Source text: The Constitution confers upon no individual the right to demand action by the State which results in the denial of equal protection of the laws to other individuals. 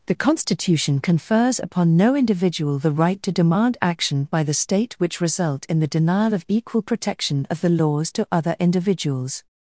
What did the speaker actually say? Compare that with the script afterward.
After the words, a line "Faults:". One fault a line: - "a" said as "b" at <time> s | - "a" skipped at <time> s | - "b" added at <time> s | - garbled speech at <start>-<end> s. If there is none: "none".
The Constitution confers upon no individual the right to demand action by the State which result in the denial of equal protection of the laws to other individuals.
Faults:
- "results" said as "result" at 5.2 s